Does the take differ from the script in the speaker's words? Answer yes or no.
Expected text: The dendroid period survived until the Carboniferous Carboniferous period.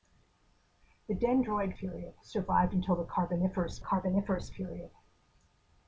no